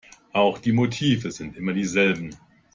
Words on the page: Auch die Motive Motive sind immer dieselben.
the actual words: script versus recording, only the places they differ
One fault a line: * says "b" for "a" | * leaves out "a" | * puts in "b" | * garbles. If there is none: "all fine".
* leaves out "Motive"